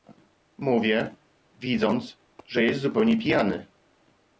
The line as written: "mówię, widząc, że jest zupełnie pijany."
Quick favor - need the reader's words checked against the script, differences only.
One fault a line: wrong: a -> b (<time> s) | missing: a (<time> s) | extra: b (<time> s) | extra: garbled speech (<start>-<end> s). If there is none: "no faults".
no faults